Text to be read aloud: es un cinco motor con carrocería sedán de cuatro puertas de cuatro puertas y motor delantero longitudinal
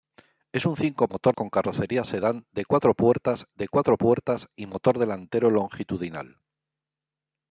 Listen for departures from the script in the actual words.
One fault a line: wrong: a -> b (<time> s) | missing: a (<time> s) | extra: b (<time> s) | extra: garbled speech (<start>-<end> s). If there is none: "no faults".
no faults